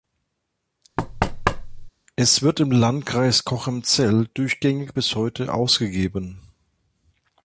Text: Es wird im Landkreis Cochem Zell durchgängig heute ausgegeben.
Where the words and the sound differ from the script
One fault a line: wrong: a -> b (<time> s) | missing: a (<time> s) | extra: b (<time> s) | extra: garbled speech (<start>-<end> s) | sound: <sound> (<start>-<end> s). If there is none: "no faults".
sound: thud (1.0-1.9 s)
extra: bis (4.9 s)